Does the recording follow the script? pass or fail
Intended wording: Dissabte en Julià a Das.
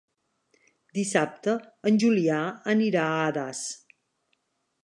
fail